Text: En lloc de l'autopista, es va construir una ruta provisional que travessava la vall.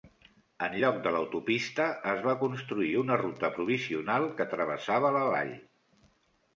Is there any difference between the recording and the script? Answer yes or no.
no